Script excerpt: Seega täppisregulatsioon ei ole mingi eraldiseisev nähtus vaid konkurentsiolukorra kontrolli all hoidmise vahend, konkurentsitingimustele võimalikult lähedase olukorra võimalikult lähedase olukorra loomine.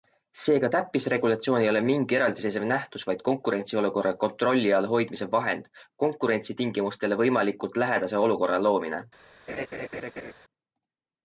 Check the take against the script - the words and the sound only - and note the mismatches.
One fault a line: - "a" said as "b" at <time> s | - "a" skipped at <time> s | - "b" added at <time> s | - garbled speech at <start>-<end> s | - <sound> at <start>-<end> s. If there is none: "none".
- "võimalikult lähedase olukorra" skipped at 8.6 s
- laugh at 9.5-10.3 s